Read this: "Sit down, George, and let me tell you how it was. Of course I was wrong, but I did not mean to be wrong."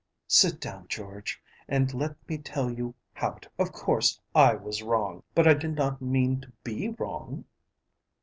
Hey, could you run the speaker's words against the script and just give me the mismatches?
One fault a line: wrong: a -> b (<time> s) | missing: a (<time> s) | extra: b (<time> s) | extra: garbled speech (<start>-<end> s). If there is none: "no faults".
missing: was (3.5 s)